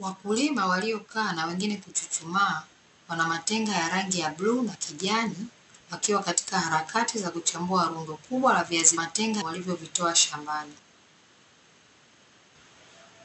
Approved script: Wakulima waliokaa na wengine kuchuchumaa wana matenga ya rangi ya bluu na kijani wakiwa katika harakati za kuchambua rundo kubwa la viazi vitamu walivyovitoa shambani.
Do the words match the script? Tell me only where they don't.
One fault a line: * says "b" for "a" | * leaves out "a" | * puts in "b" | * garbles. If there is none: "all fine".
* says "matenga" for "vitamu"